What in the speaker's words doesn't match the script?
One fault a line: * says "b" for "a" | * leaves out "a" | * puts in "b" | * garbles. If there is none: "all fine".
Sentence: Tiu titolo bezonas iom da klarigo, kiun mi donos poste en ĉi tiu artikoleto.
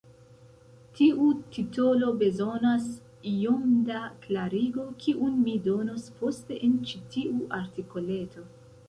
all fine